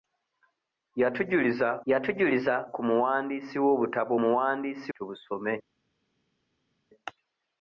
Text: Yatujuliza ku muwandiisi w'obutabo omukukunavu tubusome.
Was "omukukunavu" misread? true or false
true